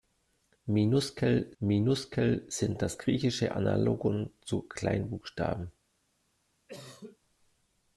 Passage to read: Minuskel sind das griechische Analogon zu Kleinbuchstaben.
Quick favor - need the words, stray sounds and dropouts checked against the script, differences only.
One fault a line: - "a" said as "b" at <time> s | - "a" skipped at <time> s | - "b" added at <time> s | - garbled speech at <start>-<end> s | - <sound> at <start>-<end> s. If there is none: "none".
- "minuskel" added at 1.6 s
- cough at 6.7-7.2 s